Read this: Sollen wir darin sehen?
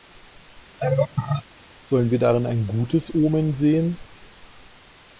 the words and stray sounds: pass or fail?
fail